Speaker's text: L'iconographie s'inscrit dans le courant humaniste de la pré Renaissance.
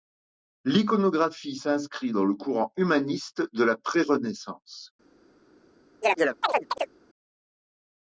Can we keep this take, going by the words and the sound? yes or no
no